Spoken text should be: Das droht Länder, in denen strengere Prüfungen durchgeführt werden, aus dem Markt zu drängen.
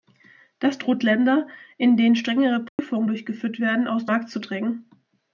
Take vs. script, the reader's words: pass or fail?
fail